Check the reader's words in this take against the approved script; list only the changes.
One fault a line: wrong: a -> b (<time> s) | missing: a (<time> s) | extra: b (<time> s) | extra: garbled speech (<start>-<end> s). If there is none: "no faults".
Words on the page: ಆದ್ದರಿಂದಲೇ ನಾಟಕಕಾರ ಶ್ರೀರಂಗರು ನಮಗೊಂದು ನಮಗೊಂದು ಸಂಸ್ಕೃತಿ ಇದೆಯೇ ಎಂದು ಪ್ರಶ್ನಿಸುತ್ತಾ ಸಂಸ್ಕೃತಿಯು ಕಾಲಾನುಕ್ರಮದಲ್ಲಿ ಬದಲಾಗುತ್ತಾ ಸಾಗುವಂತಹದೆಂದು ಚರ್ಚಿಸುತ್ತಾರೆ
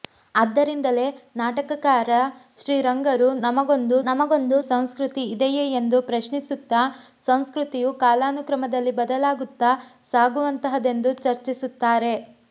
no faults